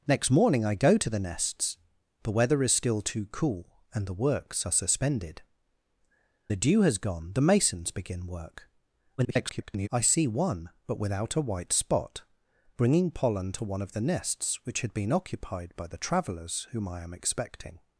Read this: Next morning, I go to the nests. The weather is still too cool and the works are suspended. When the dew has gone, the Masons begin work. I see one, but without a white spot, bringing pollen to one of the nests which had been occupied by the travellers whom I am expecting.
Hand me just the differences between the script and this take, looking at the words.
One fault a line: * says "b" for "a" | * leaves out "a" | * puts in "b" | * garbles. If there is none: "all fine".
* leaves out "When"
* garbles